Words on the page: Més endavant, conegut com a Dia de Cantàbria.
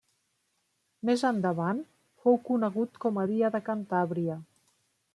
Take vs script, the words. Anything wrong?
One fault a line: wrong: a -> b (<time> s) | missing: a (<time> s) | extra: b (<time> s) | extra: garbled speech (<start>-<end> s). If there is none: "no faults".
extra: fou (2.2 s)